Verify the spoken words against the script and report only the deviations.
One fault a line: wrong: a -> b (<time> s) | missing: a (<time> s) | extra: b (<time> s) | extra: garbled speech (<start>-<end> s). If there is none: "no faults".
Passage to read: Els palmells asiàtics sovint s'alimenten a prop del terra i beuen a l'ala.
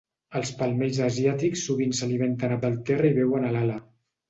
missing: prop (2.6 s)